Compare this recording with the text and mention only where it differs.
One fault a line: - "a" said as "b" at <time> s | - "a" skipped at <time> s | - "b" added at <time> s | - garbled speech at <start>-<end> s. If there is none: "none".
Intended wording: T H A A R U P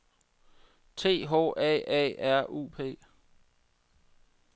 none